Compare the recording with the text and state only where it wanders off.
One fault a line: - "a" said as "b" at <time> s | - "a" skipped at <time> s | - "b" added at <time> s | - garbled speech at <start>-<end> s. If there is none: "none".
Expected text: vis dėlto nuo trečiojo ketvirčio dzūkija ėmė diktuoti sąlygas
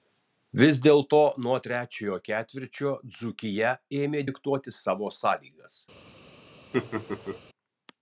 - "savo" added at 4.8 s